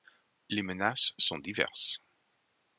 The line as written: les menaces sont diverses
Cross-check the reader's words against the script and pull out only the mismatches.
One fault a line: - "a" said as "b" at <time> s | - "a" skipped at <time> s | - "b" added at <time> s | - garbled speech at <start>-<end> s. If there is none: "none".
none